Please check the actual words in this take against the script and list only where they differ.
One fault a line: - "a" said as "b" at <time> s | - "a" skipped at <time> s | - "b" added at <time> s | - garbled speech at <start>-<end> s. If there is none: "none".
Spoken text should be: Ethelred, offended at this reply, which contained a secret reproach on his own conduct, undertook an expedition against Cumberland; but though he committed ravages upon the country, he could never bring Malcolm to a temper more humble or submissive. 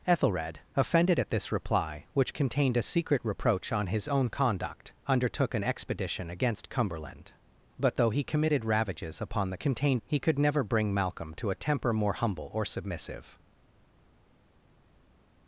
- "country" said as "contained" at 9.6 s